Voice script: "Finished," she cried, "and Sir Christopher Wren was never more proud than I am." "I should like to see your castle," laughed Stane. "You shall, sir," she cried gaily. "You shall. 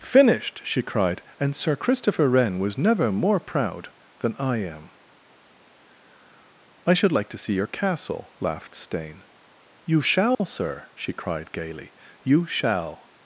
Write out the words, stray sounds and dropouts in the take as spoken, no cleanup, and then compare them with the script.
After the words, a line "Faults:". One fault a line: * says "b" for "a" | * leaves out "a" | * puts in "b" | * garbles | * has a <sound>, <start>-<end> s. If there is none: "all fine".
"Finished," she cried, "and Sir Christopher Wren was never more proud than I am." "I should like to see your castle," laughed Stane. "You shall, sir," she cried gaily. "You shall.
Faults:
* has a dropout, 10.3-10.4 s